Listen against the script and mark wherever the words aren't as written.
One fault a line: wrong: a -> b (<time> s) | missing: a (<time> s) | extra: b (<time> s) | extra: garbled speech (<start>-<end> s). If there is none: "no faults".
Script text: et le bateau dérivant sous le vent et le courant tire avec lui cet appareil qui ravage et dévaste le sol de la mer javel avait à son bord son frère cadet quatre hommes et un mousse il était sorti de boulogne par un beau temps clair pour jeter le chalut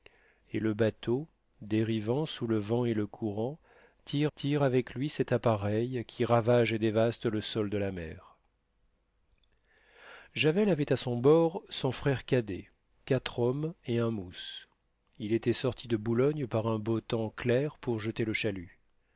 extra: tire (4.3 s)